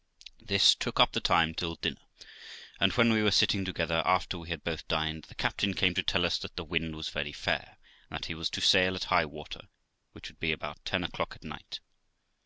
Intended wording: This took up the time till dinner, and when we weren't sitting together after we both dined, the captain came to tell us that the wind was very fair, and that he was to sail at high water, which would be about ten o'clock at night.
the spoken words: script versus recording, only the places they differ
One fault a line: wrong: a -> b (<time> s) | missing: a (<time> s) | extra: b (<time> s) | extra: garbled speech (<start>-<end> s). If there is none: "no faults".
wrong: weren't -> were (3.2 s)
extra: had (4.5 s)